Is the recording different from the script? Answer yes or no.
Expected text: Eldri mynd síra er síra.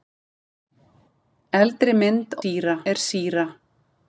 no